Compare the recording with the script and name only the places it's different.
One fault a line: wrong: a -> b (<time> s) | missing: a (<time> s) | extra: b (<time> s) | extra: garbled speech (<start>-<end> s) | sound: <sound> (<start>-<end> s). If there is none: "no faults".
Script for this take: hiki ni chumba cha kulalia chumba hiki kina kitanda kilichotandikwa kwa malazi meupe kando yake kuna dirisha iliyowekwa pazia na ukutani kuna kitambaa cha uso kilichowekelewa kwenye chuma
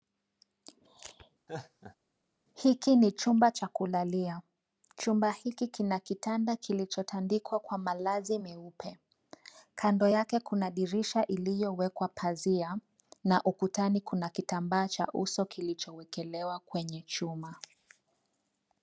sound: laugh (1.5-2.0 s)